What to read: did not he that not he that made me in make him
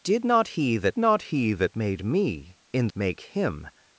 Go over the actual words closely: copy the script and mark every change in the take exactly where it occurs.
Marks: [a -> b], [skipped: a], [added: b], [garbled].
did not he that not he that made me in make him